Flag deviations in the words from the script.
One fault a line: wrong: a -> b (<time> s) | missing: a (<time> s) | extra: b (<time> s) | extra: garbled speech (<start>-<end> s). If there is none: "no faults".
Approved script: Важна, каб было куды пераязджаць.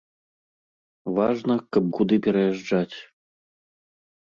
missing: было (1.8 s)